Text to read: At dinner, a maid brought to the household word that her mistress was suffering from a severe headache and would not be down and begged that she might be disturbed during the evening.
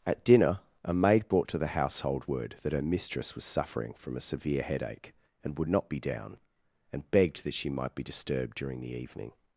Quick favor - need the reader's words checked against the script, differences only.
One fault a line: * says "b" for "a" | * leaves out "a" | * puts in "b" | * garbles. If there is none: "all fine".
all fine